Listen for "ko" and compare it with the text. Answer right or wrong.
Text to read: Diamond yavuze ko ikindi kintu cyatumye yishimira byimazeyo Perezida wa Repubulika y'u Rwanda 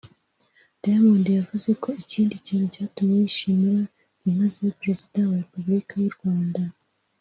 right